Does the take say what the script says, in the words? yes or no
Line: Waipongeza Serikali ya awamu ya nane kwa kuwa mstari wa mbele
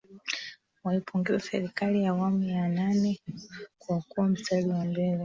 yes